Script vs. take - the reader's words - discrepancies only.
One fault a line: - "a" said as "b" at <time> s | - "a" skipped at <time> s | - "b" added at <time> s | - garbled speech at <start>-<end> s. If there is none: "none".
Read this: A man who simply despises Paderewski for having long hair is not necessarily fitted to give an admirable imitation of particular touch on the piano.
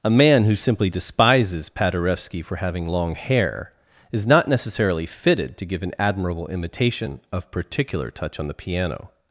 none